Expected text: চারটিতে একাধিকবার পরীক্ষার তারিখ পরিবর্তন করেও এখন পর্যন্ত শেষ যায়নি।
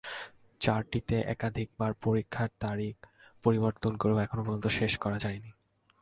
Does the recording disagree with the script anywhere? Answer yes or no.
yes